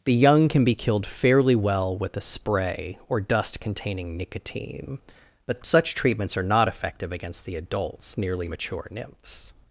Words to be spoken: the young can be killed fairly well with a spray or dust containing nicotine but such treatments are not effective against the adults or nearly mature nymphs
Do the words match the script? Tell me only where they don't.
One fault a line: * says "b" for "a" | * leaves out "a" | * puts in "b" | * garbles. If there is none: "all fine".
* leaves out "or"